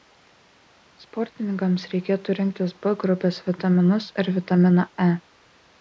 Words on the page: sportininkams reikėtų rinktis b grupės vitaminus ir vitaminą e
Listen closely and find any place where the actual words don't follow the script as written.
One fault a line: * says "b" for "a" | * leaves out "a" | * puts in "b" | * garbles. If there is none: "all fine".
all fine